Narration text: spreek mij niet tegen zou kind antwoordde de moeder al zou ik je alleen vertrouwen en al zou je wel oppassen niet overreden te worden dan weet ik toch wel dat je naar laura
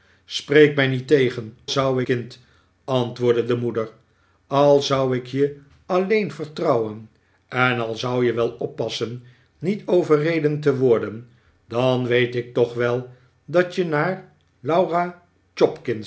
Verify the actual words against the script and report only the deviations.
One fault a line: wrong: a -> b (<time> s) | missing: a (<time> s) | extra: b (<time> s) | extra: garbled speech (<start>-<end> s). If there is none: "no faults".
no faults